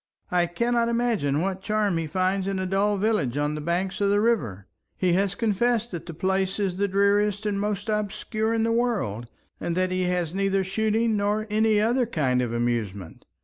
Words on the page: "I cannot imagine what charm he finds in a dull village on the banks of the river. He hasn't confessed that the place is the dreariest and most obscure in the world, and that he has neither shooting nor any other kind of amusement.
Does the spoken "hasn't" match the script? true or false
false